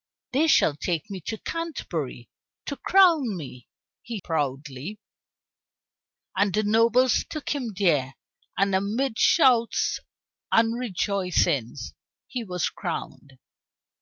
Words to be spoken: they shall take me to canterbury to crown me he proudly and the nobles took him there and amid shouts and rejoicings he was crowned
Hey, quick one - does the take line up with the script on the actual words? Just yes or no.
yes